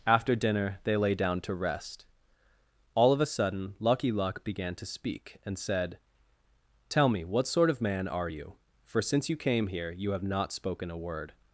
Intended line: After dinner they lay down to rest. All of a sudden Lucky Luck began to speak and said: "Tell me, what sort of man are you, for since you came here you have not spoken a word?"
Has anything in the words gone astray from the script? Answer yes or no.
no